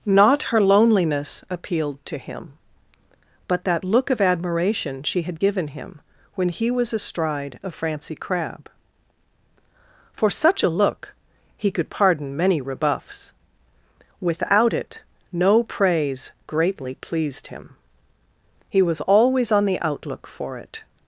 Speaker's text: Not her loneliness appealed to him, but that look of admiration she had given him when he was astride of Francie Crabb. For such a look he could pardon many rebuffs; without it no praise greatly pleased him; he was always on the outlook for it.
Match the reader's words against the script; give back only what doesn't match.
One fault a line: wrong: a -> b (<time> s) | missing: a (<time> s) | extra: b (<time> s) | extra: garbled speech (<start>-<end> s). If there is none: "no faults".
no faults